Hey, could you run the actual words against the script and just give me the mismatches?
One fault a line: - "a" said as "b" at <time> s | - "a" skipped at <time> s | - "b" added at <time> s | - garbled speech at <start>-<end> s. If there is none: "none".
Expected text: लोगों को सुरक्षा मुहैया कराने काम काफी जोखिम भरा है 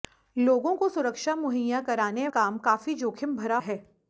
none